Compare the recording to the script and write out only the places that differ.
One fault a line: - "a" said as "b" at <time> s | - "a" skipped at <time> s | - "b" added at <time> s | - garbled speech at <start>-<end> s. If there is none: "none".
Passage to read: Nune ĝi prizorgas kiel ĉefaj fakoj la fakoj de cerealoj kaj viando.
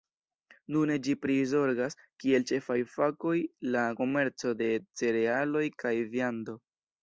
- "fakoj" said as "komerco" at 4.0 s